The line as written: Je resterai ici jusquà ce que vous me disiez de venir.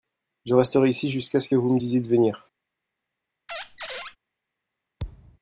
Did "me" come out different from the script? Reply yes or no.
no